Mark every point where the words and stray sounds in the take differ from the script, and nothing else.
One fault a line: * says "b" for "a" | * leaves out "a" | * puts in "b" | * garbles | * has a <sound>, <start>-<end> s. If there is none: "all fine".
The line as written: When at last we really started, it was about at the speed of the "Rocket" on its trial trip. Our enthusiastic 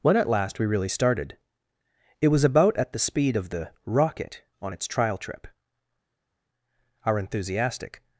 all fine